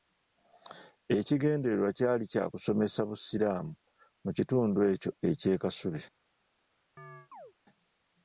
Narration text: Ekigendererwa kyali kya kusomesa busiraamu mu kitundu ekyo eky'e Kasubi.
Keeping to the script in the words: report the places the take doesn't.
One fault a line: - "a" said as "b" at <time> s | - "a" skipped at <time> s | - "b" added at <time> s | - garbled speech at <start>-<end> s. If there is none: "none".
none